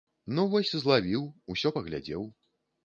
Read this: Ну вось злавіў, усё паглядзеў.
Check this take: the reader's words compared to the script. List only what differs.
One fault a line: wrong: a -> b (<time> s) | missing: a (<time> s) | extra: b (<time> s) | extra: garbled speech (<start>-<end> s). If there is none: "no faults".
no faults